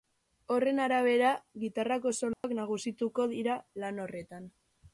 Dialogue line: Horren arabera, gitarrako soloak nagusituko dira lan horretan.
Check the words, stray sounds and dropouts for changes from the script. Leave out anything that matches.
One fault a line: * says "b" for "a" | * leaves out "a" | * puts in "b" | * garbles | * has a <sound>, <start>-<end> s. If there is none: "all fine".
* has a dropout, 2.3-2.4 s